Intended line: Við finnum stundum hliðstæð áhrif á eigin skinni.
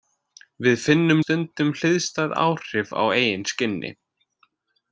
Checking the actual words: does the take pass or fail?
pass